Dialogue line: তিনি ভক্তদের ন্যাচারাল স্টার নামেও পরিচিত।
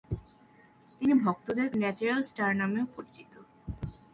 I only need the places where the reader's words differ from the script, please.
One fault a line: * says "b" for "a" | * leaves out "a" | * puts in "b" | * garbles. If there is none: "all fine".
all fine